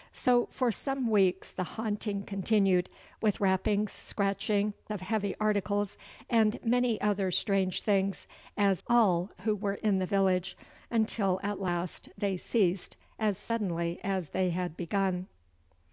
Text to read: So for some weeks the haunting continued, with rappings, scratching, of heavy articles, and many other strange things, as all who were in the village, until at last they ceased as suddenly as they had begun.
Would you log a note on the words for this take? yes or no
no